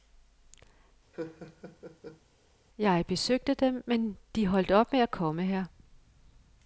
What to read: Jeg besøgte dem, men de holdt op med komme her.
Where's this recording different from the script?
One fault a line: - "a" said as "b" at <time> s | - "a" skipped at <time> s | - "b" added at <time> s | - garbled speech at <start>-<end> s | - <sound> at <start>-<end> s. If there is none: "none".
- laugh at 1.1-2.2 s
- "at" added at 5.0 s